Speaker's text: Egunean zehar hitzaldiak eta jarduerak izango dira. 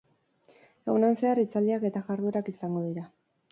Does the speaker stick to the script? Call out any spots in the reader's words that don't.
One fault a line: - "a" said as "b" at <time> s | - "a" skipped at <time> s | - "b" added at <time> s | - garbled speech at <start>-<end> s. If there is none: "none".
none